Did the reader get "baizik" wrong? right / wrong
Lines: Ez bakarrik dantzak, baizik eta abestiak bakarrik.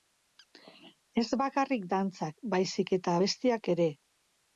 right